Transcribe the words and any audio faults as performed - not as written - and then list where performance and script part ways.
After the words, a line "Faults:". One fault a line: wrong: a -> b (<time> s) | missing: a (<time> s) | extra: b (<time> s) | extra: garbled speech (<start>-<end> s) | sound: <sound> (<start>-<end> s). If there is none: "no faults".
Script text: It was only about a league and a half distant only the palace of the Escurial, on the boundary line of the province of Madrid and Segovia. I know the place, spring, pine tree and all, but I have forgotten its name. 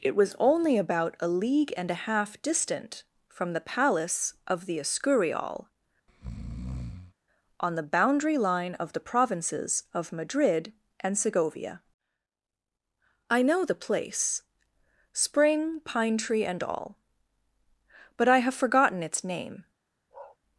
It was only about a league and a half distant from the palace of the Escurial, on the boundary line of the provinces of Madrid and Segovia. I know the place, spring, pine tree and all, but I have forgotten its name.
Faults:
wrong: only -> from (3.3 s)
sound: breath (6.1-7.1 s)
wrong: province -> provinces (9.0 s)
sound: bark (20.1-20.4 s)